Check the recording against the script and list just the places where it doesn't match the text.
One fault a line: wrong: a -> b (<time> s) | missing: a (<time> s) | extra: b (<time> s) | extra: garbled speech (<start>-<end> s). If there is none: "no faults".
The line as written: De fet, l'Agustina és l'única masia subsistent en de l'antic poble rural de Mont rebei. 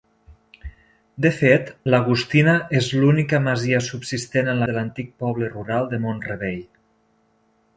no faults